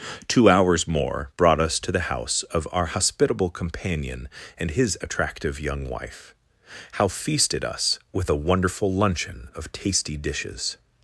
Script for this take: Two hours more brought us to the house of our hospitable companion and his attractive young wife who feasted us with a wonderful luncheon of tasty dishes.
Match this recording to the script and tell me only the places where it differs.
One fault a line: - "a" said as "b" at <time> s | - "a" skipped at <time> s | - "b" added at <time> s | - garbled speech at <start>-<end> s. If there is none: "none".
- "who" said as "how" at 6.9 s